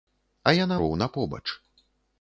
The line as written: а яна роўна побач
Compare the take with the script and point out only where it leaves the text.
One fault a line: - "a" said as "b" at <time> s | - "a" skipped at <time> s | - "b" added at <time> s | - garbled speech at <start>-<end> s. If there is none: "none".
none